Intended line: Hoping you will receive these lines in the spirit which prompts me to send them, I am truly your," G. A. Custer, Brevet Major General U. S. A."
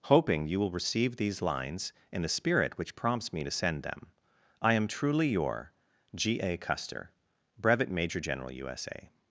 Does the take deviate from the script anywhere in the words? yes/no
no